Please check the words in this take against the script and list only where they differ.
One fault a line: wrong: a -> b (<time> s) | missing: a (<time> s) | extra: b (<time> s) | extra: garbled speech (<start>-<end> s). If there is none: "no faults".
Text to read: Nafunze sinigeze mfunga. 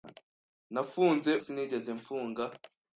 no faults